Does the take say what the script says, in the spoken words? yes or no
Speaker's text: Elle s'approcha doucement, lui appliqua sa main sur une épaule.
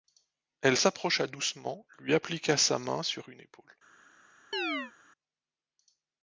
yes